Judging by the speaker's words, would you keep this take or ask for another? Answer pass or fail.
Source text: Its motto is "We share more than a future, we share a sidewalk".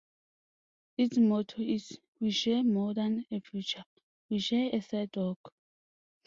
pass